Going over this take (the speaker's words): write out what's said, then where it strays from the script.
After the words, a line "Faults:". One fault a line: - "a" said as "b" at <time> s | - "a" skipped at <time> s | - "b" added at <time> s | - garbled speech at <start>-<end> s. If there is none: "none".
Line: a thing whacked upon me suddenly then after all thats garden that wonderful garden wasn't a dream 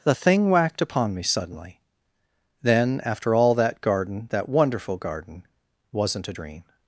the thing whacked upon me suddenly then after all that garden that wonderful garden wasn't a dream
Faults:
- "a" said as "the" at 0.0 s
- "thats" said as "that" at 3.5 s